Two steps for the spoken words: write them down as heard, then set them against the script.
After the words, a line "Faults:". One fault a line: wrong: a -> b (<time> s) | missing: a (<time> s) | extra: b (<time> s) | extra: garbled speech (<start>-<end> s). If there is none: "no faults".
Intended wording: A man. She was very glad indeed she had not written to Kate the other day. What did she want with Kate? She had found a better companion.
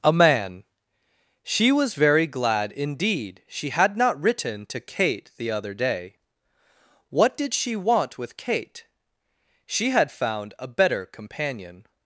A man. She was very glad indeed she had not written to Kate the other day. What did she want with Kate? She had found a better companion.
Faults:
no faults